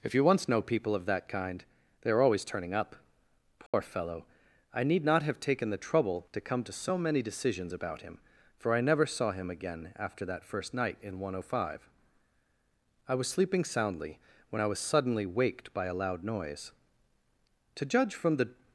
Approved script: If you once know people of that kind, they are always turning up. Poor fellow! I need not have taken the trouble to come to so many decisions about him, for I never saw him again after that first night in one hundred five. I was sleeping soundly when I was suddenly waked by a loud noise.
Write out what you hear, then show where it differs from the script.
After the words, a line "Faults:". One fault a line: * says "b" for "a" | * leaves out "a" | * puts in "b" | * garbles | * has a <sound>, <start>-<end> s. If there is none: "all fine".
If you once know people of that kind, they are always turning up. Poor fellow! I need not have taken the trouble to come to so many decisions about him, for I never saw him again after that first night in one hundred five. I was sleeping soundly when I was suddenly waked by a loud noise. To judge from the
Faults:
* has a dropout, 3.7-3.7 s
* puts in "To judge from the"